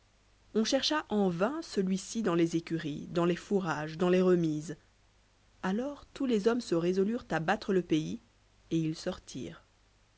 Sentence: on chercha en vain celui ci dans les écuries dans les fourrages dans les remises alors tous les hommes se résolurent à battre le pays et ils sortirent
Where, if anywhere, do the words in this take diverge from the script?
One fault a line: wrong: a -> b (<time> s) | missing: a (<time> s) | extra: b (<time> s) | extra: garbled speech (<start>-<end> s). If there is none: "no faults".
no faults